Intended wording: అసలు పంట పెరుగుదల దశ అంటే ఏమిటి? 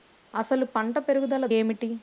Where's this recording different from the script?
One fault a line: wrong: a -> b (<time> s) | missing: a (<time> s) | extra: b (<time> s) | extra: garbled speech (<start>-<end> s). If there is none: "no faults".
missing: దశ అంటే (1.4 s)